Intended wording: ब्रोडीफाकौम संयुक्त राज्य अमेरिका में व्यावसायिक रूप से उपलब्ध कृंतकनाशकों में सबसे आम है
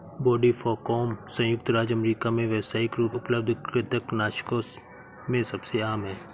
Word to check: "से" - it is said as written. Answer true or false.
false